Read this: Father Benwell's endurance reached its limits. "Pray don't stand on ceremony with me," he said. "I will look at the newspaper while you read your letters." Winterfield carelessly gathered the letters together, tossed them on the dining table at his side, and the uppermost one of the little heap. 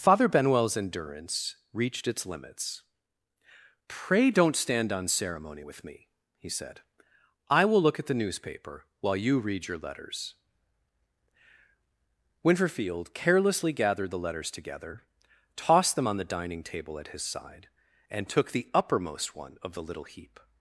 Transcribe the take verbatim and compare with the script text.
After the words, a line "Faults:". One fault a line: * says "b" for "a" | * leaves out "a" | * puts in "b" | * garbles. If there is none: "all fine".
Father Benwell's endurance reached its limits. "Pray don't stand on ceremony with me," he said. "I will look at the newspaper while you read your letters." Winterfield carelessly gathered the letters together, tossed them on the dining table at his side, and took the uppermost one of the little heap.
Faults:
* puts in "took"